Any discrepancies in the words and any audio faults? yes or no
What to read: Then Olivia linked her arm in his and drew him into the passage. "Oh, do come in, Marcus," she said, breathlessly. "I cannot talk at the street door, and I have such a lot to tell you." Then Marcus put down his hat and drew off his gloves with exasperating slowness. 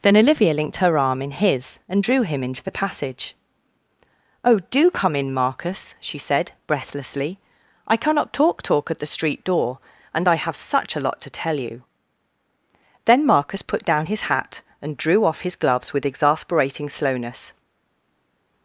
yes